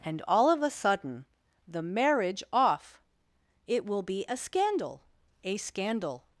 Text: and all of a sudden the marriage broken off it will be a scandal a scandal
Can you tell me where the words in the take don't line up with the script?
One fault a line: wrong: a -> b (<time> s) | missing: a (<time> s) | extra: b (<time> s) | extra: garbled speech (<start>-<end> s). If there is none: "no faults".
missing: broken (2.4 s)